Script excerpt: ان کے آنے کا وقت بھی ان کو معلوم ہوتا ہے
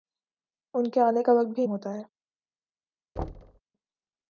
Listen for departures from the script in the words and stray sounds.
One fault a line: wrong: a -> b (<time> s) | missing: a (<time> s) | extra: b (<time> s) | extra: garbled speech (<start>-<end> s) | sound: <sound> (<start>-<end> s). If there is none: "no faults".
missing: ان کو معلوم (1.6 s)
sound: thud (3.2-3.6 s)